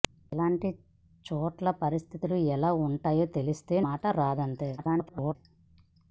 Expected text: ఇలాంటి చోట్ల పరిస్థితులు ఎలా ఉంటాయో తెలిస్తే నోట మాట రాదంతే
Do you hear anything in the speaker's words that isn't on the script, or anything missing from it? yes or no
yes